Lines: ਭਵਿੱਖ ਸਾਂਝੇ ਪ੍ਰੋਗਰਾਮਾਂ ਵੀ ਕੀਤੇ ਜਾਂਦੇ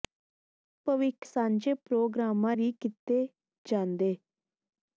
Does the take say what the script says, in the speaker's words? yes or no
yes